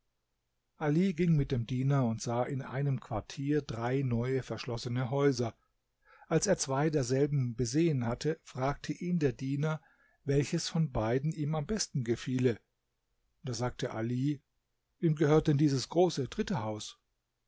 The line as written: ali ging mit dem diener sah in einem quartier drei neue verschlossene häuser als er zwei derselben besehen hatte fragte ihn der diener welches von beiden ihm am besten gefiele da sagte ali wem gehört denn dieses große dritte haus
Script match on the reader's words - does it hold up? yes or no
no